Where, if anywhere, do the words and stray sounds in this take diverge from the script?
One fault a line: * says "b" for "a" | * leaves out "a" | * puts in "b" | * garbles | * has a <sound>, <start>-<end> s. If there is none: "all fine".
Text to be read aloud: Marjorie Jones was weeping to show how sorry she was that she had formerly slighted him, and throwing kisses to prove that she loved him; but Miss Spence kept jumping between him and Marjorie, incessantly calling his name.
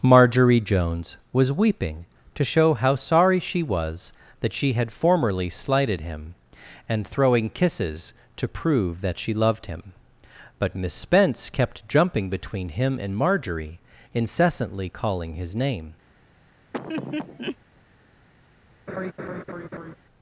* has a laugh, 16.7-17.6 s
* has a laugh, 18.9-20.0 s